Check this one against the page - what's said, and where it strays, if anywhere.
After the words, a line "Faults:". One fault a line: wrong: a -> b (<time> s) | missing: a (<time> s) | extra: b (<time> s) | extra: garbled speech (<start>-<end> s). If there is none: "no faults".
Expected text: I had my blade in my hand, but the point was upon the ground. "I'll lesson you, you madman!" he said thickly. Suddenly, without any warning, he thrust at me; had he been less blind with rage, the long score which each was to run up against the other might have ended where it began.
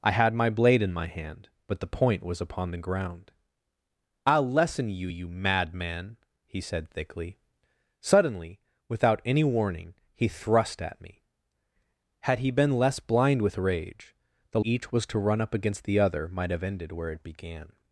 I had my blade in my hand, but the point was upon the ground. "I'll lesson you, you madman!" he said thickly. Suddenly, without any warning, he thrust at me; had he been less blind with rage, the each was to run up against the other might have ended where it began.
Faults:
missing: long score which (14.6 s)